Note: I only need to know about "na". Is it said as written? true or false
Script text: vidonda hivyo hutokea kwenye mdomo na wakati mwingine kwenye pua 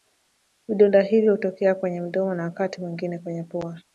true